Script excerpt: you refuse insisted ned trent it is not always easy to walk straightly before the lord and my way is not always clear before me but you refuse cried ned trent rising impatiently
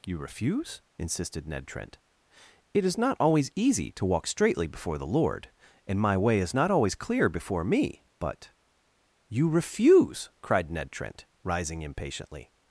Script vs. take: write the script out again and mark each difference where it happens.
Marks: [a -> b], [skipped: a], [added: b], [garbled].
you refuse insisted ned trent it is not always easy to walk straightly before the lord and my way is not always clear before me but you refuse cried ned trent rising impatiently